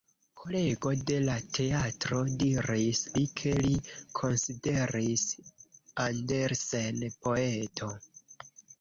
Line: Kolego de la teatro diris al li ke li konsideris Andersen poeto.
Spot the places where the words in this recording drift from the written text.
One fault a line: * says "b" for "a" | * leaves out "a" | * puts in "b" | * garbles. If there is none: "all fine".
* leaves out "al"